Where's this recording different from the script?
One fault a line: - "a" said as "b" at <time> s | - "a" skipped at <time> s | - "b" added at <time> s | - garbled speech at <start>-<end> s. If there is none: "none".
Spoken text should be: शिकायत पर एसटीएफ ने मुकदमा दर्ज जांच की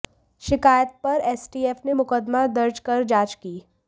- "कर" added at 2.8 s